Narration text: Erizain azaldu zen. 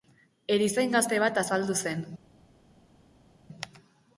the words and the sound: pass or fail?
fail